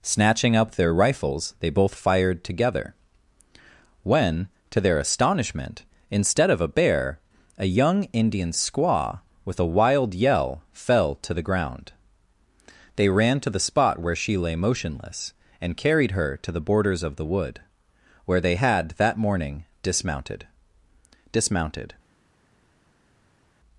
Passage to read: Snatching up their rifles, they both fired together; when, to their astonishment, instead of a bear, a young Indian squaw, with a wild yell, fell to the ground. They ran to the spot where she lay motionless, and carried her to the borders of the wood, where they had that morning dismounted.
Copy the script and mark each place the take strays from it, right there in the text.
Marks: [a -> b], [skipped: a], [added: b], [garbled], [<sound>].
Snatching up their rifles, they both fired together; when, to their astonishment, instead of a bear, a young Indian squaw, with a wild yell, fell to the ground. They ran to the spot where she lay motionless, and carried her to the borders of the wood, where they had that morning dismounted. [added: dismounted]